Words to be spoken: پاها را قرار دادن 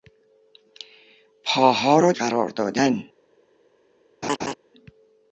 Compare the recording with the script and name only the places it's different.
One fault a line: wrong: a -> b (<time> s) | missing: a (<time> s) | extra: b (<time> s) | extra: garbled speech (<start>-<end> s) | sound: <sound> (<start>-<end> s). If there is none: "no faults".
sound: laugh (4.2-4.5 s)